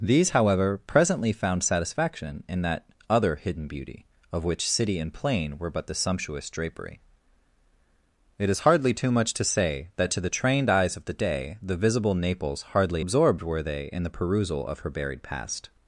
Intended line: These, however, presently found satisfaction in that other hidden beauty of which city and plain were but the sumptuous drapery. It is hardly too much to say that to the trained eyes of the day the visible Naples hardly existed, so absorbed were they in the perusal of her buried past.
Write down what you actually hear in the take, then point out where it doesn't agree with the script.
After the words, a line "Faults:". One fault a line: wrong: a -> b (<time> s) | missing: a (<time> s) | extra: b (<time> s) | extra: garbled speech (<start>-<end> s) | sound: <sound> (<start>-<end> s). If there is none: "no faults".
These, however, presently found satisfaction in that other hidden beauty of which city and plain were but the sumptuous drapery. It is hardly too much to say that to the trained eyes of the day the visible Naples hardly absorbed were they in the perusal of her buried past.
Faults:
missing: existed so (13.0 s)